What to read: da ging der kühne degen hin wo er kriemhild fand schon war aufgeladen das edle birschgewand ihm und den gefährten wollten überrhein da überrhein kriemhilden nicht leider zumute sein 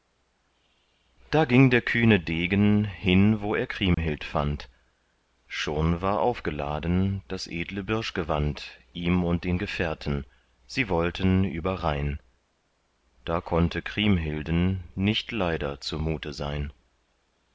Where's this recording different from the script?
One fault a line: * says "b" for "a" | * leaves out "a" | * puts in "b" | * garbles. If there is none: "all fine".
* puts in "sie"
* says "konnte" for "überrhein"